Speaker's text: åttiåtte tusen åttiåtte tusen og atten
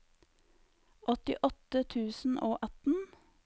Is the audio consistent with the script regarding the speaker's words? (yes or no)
no